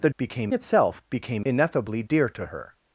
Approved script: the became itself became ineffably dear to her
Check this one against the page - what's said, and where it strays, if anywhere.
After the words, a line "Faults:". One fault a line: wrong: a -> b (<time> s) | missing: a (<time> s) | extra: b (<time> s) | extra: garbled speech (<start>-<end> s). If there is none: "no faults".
the became itself became ineffably dear to her
Faults:
no faults